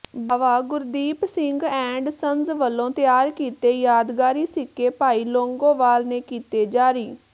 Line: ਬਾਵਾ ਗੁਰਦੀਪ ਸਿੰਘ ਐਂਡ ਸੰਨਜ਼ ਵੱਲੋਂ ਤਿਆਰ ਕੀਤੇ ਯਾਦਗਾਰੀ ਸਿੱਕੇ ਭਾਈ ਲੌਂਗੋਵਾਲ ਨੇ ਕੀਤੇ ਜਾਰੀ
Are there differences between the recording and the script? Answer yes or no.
no